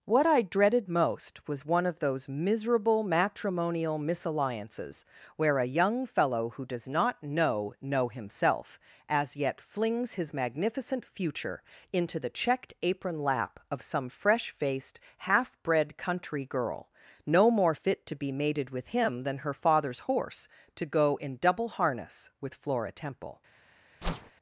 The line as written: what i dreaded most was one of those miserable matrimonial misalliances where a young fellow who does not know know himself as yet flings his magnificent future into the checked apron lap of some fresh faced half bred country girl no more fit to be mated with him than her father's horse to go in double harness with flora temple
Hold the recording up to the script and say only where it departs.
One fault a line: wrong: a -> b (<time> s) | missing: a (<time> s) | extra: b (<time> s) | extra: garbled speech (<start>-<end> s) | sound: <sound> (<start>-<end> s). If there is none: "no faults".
sound: whoosh (24.0-24.3 s)